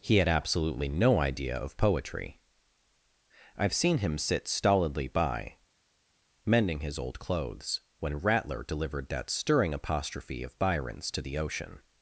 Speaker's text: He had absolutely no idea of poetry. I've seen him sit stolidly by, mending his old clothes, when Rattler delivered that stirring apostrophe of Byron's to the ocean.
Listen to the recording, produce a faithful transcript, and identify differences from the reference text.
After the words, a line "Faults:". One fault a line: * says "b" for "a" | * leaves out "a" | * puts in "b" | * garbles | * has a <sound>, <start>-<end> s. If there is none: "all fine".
He had absolutely no idea of poetry. I've seen him sit stolidly by, mending his old clothes, when Rattler delivered that stirring apostrophe of Byron's to the ocean.
Faults:
all fine